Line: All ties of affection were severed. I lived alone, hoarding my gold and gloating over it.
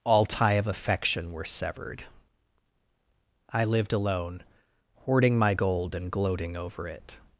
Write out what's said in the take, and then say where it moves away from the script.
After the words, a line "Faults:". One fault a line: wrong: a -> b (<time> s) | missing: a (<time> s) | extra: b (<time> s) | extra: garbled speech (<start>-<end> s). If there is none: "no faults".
All tie of affection were severed. I lived alone, hoarding my gold and gloating over it.
Faults:
wrong: ties -> tie (0.2 s)